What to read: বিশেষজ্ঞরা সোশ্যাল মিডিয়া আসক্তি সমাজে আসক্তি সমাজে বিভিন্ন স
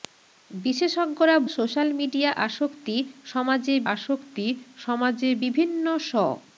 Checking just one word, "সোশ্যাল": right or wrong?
right